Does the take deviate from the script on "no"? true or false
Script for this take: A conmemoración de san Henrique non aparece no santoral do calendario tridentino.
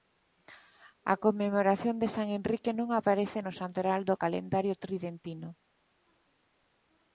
false